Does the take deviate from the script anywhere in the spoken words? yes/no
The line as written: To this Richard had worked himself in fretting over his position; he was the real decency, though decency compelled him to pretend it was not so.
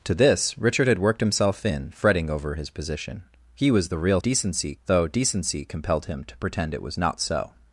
no